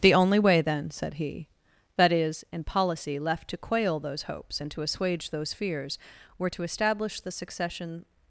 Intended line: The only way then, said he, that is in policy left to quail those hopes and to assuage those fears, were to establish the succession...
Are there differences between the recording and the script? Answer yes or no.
no